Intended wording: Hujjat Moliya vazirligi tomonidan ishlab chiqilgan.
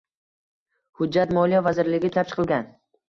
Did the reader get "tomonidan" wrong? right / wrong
wrong